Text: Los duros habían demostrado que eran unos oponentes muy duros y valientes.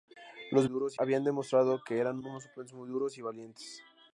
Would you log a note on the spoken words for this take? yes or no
no